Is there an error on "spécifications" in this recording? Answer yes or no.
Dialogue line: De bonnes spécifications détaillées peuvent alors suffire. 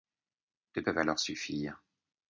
yes